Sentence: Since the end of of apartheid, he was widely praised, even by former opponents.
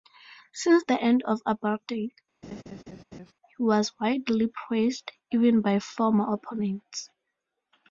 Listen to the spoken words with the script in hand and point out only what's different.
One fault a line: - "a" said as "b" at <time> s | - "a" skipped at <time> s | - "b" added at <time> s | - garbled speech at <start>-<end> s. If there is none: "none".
- "of" skipped at 1.4 s